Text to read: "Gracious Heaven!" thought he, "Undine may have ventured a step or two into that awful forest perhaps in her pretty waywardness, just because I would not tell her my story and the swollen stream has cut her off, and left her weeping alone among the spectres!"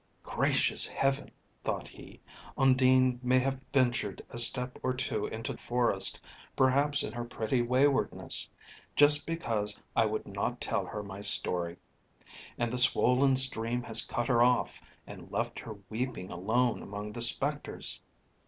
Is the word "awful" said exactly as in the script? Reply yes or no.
no